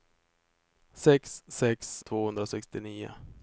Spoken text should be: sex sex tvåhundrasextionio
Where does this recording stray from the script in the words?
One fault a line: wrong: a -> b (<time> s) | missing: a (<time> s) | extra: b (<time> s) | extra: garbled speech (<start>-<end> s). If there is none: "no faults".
no faults